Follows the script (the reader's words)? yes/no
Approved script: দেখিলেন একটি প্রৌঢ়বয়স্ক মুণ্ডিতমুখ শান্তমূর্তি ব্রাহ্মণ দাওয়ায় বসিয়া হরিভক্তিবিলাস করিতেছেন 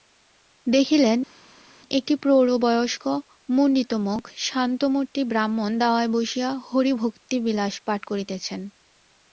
no